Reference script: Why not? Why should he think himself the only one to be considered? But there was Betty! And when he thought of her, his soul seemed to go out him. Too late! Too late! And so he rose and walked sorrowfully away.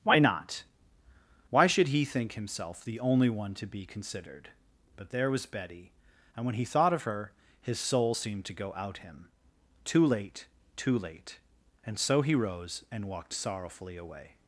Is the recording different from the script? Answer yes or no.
no